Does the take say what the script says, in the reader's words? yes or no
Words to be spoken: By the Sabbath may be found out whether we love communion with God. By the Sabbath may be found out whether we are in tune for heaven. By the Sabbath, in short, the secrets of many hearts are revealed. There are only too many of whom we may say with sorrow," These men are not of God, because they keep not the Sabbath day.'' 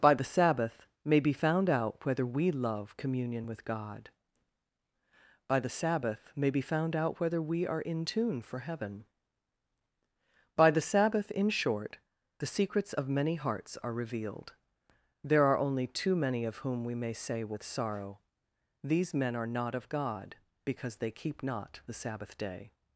yes